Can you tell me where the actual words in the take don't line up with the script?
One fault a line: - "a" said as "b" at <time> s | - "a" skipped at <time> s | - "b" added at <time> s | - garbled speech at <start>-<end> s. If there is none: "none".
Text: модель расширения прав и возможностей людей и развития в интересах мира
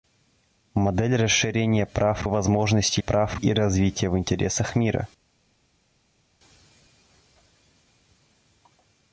- "людей" said as "прав" at 3.0 s